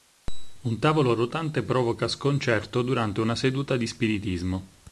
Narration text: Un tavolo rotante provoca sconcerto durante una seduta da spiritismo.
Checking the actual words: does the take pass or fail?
fail